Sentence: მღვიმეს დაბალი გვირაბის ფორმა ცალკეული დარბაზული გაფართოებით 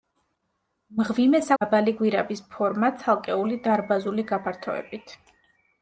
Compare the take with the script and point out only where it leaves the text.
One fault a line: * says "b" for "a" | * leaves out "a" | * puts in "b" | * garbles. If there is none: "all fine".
all fine